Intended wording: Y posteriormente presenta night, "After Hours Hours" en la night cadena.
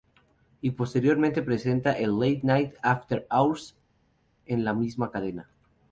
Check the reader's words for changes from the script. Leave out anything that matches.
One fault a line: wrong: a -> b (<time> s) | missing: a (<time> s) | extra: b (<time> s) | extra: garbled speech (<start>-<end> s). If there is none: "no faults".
extra: el late (1.9 s)
missing: Hours (3.8 s)
wrong: night -> misma (4.7 s)